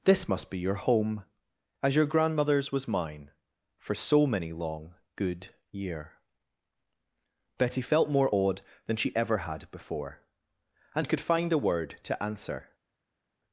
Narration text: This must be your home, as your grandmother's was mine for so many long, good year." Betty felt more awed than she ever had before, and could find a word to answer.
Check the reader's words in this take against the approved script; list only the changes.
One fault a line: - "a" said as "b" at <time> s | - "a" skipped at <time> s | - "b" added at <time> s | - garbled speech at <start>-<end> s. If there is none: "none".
none